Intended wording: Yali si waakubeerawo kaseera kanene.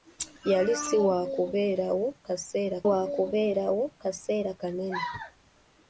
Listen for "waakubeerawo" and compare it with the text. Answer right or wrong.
right